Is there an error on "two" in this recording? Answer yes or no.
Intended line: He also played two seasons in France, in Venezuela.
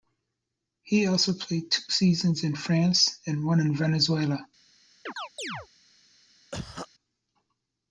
no